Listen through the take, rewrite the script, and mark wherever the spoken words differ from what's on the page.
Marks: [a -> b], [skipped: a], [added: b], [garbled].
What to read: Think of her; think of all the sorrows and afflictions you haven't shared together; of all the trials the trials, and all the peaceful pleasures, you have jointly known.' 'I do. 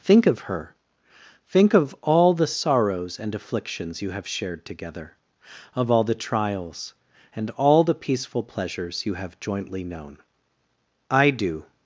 Think of her; think of all the sorrows and afflictions you [haven't -> have] shared together; of all the trials [skipped: the trials,] and all the peaceful pleasures, you have jointly known.' 'I do.